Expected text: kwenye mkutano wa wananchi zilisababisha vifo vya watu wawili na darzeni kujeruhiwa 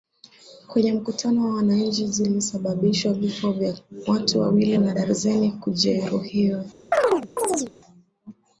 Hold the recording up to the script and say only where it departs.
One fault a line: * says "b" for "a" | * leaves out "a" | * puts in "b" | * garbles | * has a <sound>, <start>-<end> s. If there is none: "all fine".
* has a chirp, 6.9-7.7 s